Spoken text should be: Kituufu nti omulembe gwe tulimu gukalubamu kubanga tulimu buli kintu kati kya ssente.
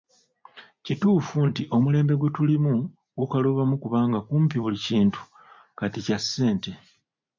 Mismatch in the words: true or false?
true